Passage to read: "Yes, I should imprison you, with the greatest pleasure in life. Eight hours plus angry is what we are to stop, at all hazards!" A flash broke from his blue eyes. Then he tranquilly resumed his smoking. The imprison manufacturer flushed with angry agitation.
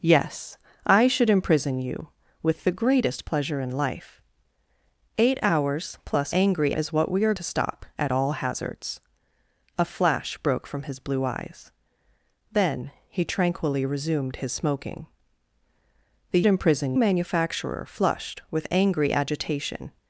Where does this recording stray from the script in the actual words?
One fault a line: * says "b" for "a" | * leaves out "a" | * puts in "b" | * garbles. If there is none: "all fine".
all fine